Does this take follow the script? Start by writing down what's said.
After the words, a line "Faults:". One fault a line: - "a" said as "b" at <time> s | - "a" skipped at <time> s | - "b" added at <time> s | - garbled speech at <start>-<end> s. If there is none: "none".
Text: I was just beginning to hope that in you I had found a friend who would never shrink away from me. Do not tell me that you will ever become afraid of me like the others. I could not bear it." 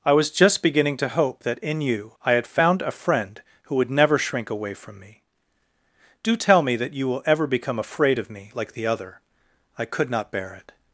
I was just beginning to hope that in you I had found a friend who would never shrink away from me. Do tell me that you will ever become afraid of me like the other. I could not bear it."
Faults:
- "not" skipped at 6.3 s
- "others" said as "other" at 8.9 s